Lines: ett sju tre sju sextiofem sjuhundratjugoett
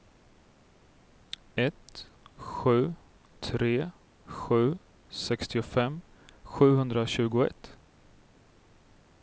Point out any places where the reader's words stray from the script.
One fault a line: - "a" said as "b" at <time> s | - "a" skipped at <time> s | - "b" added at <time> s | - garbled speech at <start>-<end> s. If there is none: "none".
none